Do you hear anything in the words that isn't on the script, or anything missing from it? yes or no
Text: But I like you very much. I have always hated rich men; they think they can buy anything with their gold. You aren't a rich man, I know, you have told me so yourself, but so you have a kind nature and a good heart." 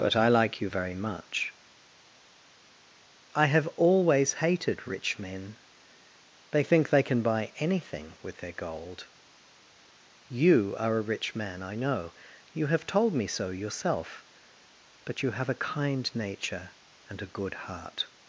yes